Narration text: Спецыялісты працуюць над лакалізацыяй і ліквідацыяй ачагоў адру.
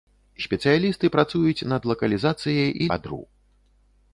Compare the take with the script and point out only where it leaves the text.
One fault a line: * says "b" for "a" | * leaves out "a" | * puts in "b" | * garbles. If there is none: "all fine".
* leaves out "ліквідацыяй ачагоў"